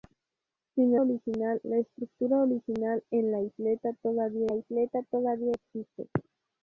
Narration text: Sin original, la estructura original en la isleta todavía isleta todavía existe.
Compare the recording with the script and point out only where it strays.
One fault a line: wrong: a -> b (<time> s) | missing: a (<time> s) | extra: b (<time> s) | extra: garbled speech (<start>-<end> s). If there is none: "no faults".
no faults